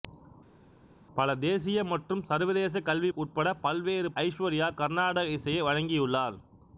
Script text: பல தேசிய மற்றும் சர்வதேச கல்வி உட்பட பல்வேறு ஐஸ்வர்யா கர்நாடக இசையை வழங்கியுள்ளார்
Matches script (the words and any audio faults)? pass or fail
pass